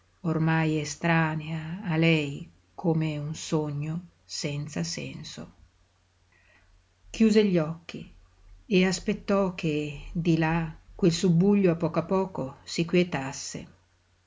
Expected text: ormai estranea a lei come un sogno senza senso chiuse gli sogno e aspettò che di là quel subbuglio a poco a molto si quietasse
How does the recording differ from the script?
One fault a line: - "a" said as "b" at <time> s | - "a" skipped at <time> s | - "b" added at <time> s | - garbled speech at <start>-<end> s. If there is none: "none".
- "sogno" said as "occhi" at 7.6 s
- "molto" said as "poco" at 12.0 s